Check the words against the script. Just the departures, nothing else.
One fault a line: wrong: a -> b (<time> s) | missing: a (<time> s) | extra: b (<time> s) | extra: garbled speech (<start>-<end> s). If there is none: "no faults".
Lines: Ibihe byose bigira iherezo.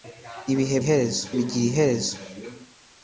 wrong: byose -> iherezo (0.8 s)